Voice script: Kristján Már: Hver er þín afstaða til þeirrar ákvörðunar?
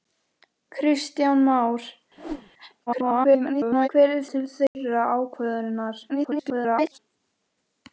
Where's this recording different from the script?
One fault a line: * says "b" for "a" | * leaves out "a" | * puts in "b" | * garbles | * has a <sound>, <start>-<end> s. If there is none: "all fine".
* has a whoosh, 2.2-2.5 s
* garbles
* leaves out "þín afstaða"
* has a dropout, 4.7-4.7 s
* garbles